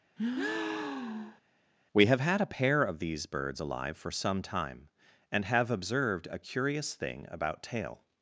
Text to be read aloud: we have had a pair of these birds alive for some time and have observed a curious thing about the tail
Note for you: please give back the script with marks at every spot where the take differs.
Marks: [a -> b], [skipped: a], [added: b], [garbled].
we have had a pair of these birds alive for some time and have observed a curious thing about [skipped: the] tail